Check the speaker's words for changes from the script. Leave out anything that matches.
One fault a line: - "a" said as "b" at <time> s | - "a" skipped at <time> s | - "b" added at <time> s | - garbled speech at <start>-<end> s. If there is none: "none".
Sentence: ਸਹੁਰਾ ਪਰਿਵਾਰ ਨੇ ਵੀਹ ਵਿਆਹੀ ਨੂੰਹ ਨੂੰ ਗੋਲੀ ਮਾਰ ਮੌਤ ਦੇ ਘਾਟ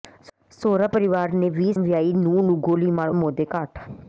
none